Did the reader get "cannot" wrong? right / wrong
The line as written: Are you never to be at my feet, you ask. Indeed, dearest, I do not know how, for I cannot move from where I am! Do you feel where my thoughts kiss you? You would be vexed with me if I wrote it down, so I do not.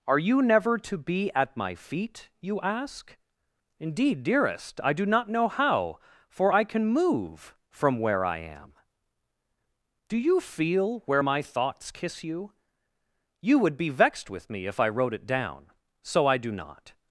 wrong